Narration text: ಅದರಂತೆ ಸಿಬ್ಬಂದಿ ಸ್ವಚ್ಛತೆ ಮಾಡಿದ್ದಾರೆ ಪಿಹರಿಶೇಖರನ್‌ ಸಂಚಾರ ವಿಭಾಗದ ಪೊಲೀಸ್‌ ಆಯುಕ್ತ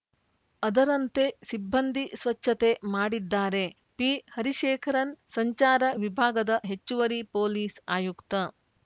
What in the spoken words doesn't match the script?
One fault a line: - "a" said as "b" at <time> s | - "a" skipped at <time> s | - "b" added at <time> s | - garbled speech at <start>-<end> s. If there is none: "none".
- "ಹೆಚ್ಚುವರಿ" added at 6.7 s